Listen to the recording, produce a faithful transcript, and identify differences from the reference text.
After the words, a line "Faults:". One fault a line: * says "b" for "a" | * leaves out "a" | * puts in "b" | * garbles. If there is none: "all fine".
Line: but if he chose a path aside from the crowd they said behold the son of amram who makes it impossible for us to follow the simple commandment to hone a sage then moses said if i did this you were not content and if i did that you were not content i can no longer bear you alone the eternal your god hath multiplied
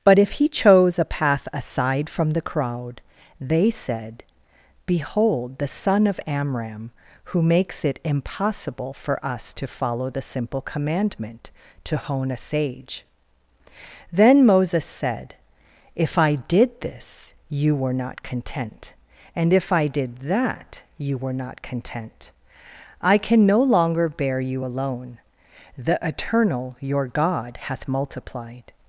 but if he chose a path aside from the crowd they said behold the son of amram who makes it impossible for us to follow the simple commandment to hone a sage then moses said if i did this you were not content and if i did that you were not content i can no longer bear you alone the eternal your god hath multiplied
Faults:
all fine